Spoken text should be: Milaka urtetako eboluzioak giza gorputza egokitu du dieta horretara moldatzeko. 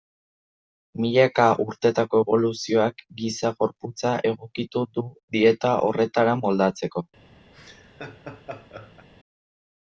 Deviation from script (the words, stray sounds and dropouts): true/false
true